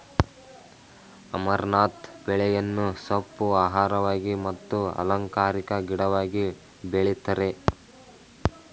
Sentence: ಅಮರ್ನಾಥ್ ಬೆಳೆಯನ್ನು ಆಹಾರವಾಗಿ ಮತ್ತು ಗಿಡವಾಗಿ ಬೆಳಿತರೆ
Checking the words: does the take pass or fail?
fail